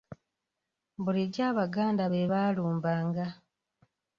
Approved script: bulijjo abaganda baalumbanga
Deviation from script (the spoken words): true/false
true